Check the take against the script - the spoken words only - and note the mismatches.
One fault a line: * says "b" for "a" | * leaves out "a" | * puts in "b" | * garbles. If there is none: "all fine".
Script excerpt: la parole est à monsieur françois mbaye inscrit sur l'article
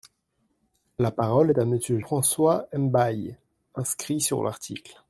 all fine